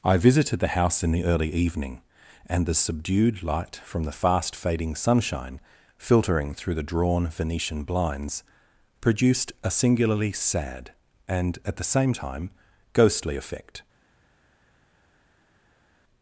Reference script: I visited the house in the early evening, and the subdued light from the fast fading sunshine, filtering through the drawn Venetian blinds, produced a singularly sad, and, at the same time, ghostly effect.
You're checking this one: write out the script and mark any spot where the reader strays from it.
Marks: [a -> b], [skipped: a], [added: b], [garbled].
I visited the house in the early evening, and the subdued light from the fast fading sunshine, filtering through the drawn Venetian blinds, produced a singularly sad, and, at the same time, ghostly effect.